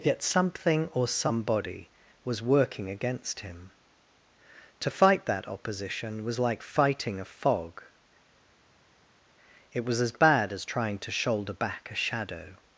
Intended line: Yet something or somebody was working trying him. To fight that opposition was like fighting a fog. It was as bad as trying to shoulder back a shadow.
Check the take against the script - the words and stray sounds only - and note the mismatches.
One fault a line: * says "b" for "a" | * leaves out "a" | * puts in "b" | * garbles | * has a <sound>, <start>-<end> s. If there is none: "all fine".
* says "against" for "trying"